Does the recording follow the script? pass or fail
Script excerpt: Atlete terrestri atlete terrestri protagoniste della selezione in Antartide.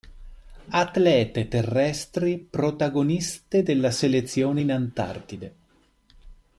fail